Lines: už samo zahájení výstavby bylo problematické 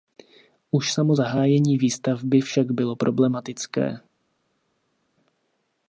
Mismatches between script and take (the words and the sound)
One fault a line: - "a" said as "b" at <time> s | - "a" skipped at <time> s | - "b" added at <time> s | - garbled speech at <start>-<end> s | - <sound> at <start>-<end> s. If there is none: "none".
- "však" added at 2.4 s